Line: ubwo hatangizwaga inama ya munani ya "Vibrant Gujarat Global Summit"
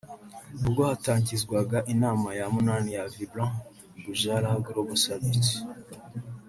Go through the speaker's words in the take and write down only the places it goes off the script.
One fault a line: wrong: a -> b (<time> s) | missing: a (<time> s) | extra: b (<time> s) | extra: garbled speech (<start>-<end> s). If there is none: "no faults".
no faults